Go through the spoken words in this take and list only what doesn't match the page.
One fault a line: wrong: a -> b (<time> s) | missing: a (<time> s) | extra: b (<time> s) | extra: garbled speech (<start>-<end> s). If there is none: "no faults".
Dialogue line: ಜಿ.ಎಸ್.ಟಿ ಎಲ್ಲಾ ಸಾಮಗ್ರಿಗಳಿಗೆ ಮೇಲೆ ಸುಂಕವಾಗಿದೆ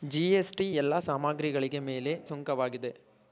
no faults